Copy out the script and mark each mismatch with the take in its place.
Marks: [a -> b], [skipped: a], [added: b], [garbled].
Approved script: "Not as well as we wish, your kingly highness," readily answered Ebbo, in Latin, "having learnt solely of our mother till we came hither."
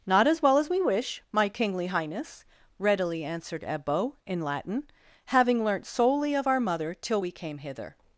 "Not as well as we wish, [your -> my] kingly highness," readily answered Ebbo, in Latin, "having learnt solely of our mother till we came hither."